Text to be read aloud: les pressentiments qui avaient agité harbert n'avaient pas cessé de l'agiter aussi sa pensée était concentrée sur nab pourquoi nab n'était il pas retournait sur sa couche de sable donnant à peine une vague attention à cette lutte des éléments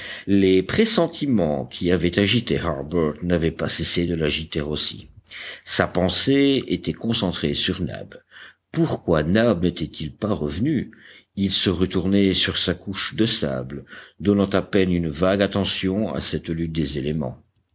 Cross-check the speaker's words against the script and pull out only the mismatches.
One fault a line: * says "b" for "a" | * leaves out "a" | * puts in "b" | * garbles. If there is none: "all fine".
* puts in "revenu il se"